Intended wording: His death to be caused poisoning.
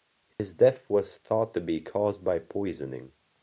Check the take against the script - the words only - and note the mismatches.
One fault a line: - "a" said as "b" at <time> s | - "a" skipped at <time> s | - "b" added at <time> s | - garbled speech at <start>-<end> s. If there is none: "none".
- "was thought" added at 0.9 s
- "by" added at 2.2 s